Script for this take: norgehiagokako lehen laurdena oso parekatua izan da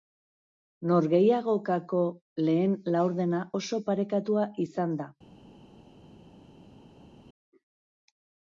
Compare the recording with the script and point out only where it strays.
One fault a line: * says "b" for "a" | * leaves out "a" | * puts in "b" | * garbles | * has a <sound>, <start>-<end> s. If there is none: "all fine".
all fine